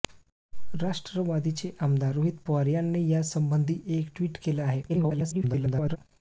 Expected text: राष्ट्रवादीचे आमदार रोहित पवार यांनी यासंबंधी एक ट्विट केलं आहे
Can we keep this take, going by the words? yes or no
no